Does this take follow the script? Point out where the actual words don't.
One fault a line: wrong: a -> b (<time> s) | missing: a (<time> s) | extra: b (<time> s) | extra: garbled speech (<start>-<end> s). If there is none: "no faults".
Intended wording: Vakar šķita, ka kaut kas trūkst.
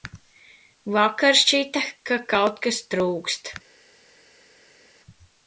no faults